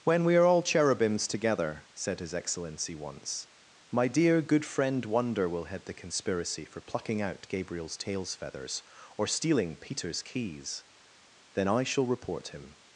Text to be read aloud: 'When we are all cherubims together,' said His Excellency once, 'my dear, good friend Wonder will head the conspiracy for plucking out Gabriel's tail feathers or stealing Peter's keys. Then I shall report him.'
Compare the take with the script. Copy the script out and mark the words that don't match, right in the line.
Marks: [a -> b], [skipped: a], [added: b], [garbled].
'When we are all cherubims together,' said His Excellency once, 'my dear, good friend Wonder will head the conspiracy for plucking out Gabriel's [tail -> tails] feathers or stealing Peter's keys. Then I shall report him.'